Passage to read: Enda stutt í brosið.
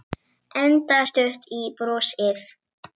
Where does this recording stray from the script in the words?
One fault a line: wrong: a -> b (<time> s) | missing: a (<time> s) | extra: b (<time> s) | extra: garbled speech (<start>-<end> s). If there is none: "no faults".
no faults